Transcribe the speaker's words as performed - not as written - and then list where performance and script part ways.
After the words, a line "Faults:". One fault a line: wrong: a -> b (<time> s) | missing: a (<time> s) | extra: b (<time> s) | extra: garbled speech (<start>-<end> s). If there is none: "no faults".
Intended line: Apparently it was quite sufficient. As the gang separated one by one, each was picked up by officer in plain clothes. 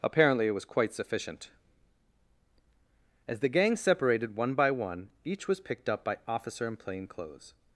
Apparently it was quite sufficient. As the gang separated one by one, each was picked up by officer in plain clothes.
Faults:
no faults